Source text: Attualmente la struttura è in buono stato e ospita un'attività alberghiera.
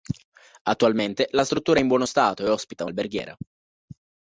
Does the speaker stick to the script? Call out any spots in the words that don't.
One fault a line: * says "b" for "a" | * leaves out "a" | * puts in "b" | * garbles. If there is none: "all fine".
* leaves out "un'attività"